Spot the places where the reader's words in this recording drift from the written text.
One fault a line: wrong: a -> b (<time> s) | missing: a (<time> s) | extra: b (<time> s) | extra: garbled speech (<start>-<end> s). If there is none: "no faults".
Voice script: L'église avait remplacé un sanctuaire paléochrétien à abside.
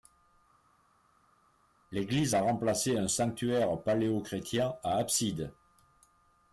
wrong: avait -> a (2.3 s)